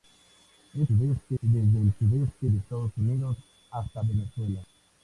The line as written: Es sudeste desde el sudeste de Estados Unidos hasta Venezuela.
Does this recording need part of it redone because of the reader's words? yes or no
no